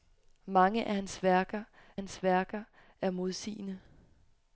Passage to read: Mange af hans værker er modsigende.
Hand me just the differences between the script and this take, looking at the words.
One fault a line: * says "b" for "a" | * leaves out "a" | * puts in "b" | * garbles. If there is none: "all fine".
* puts in "hans værker"